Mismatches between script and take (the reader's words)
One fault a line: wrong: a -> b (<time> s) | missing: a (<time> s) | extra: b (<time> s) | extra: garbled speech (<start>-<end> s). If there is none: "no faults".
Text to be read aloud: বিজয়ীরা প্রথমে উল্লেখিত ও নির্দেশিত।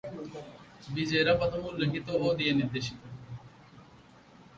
extra: দিয়ে (2.4 s)